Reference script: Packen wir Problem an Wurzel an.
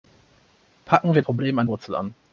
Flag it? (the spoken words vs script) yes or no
no